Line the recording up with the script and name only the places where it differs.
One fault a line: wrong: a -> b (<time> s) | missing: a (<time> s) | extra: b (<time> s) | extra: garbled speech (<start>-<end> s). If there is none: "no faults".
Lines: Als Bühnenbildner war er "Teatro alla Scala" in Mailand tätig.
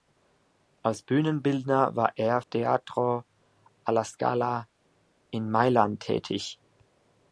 no faults